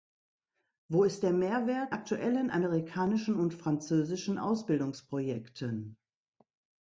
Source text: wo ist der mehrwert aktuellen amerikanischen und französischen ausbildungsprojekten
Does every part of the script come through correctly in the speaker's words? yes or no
yes